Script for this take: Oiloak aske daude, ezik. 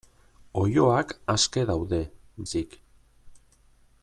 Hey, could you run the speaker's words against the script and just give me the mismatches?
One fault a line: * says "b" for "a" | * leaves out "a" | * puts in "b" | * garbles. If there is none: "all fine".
all fine